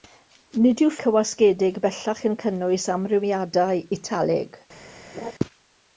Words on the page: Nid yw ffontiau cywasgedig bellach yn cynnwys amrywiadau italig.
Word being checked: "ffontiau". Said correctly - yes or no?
no